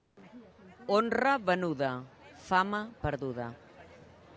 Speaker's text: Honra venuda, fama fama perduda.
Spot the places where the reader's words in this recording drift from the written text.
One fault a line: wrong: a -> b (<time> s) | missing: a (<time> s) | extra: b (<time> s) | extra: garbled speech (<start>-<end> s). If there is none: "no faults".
missing: fama (2.9 s)